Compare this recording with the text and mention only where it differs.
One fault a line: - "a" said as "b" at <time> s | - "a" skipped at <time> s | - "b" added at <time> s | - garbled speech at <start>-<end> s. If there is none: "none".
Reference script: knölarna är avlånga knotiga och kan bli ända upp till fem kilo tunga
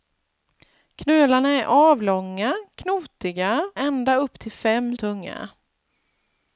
- "och kan bli" skipped at 3.7 s
- "kilo" skipped at 5.0 s